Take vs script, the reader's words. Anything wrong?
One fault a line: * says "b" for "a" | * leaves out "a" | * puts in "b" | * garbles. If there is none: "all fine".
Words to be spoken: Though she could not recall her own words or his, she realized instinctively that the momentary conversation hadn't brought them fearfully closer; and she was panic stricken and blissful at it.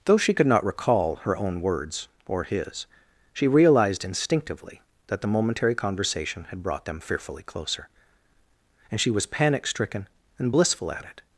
* says "had" for "hadn't"